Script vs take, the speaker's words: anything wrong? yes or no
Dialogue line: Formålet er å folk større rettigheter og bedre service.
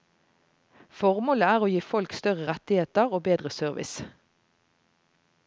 yes